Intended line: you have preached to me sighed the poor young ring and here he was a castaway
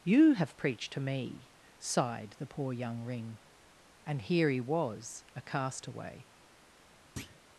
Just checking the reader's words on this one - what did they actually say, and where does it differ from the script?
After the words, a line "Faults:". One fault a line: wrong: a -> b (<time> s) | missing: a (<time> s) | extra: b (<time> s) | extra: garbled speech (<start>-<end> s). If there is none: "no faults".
you have preached to me sighed the poor young ring and here he was a castaway
Faults:
no faults